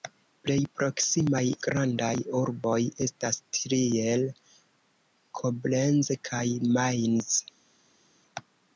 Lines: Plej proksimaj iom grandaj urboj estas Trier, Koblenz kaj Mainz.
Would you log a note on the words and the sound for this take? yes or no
yes